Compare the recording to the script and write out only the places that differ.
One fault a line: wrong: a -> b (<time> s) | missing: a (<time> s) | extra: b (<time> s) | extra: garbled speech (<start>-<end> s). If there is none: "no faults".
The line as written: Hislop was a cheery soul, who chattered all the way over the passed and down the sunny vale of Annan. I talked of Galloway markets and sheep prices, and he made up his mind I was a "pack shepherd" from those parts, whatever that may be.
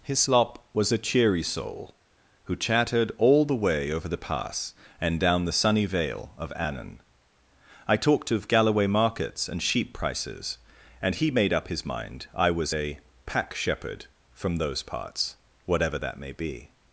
wrong: passed -> pass (4.2 s)